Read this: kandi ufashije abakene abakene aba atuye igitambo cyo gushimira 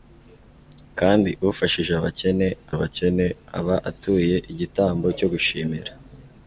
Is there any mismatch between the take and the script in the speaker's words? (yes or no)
no